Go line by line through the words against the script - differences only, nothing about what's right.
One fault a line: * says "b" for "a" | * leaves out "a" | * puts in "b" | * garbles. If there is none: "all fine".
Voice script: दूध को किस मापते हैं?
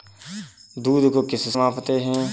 all fine